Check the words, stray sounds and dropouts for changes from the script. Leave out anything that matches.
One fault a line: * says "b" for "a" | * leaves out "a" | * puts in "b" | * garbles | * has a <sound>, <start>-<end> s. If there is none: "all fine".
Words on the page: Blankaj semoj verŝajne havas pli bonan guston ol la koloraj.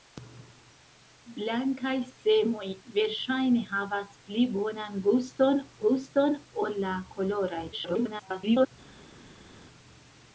* puts in "guston"
* garbles